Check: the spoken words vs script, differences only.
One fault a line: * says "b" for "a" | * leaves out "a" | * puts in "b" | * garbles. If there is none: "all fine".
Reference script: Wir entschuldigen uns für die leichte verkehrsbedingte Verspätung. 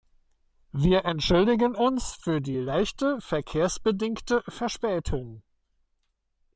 all fine